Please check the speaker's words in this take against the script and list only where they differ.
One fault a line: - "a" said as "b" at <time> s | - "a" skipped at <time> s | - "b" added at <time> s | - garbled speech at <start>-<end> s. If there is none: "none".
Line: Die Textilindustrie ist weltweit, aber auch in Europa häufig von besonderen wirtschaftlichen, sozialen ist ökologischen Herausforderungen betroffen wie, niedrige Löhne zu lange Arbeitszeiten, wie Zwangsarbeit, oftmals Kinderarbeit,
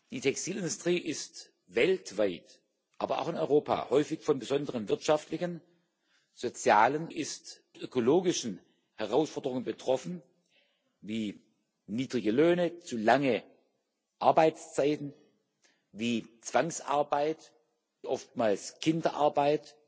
none